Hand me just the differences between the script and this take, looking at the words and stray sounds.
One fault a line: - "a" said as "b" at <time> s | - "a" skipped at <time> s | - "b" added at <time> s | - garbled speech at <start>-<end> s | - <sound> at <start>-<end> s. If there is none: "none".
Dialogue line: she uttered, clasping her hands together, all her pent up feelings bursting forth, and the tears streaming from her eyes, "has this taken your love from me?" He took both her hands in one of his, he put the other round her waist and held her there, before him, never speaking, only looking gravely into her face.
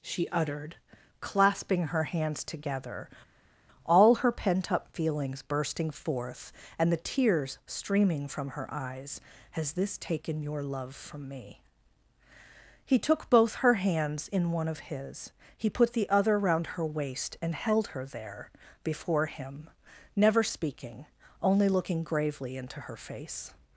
none